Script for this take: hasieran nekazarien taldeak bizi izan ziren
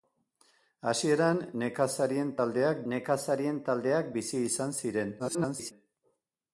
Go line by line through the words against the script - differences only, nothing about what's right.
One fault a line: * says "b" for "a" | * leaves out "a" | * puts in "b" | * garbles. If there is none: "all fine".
* puts in "nekazarien taldeak"
* garbles